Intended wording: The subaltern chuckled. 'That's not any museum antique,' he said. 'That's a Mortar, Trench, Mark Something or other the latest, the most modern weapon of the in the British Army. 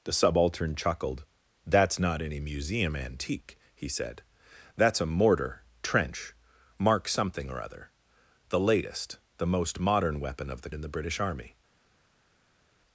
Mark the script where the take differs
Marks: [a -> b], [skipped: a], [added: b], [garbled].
The subaltern chuckled. 'That's not any museum antique,' he said. 'That's a Mortar, Trench, Mark Something or other the latest, the most modern weapon of the in the British Army.